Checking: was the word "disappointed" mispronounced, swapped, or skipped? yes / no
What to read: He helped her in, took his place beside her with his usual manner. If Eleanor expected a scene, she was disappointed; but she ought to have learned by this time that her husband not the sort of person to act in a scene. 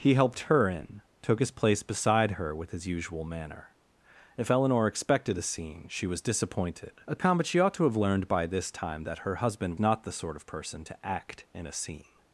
no